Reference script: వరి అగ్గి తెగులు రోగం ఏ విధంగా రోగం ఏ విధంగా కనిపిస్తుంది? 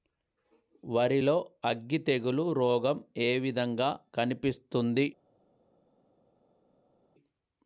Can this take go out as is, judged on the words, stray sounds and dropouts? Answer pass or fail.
fail